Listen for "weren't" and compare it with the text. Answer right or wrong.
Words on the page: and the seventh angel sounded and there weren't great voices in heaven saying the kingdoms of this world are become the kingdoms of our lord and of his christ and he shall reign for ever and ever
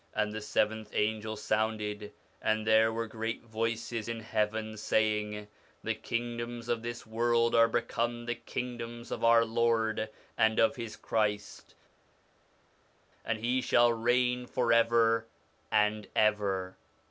wrong